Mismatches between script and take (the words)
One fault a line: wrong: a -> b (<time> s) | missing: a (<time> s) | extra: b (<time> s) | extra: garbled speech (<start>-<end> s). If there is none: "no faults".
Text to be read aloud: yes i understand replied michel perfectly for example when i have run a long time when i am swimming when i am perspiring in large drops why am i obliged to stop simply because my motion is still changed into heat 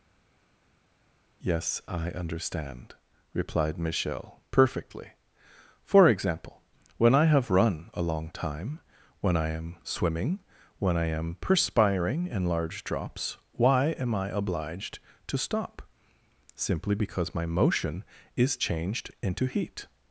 missing: still (18.6 s)